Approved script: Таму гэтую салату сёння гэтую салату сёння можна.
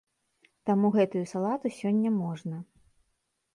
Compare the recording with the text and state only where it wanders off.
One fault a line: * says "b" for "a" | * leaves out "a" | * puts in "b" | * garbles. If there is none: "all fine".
* leaves out "гэтую салату сёння"